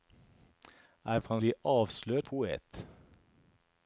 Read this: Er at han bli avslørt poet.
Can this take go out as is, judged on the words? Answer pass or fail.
pass